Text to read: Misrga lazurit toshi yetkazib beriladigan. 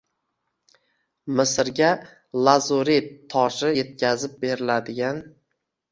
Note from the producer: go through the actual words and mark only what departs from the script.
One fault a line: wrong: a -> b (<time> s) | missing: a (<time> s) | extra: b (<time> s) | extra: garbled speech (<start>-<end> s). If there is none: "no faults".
no faults